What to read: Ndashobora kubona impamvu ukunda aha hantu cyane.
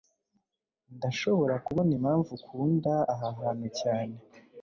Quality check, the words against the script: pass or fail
pass